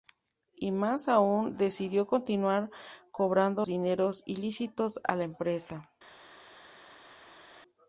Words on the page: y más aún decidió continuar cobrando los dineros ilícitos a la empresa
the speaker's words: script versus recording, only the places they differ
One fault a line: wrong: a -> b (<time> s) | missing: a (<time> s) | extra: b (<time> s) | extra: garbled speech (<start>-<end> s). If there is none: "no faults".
missing: los (3.7 s)